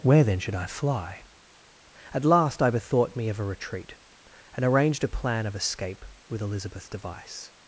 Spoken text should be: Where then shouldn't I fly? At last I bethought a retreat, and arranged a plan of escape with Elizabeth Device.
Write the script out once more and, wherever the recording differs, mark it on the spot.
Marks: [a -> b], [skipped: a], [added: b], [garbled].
Where then [shouldn't -> should] I fly? At last I bethought [added: me of] a retreat, and arranged a plan of escape with Elizabeth Device.